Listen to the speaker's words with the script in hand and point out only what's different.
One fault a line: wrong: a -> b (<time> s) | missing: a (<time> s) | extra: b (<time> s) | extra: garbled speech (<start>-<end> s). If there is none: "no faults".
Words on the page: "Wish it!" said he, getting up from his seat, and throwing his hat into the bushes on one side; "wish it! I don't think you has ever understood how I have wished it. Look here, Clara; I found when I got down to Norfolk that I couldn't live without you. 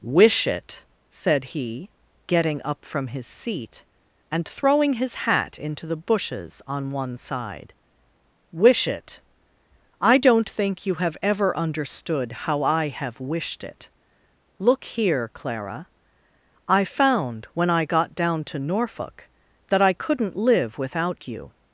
wrong: has -> have (10.9 s)